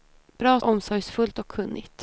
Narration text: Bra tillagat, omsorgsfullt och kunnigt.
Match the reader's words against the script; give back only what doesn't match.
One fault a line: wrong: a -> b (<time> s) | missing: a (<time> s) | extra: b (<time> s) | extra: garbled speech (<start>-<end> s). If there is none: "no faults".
missing: tillagat (0.6 s)